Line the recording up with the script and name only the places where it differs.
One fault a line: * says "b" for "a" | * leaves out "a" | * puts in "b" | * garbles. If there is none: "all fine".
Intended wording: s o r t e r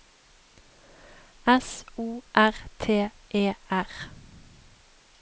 all fine